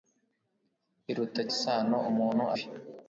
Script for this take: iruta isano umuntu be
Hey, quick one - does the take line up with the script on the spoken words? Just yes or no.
yes